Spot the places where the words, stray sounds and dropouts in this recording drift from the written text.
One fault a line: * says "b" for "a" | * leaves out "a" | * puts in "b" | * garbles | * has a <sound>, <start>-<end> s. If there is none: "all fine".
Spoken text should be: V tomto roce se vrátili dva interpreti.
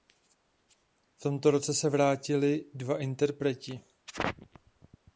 all fine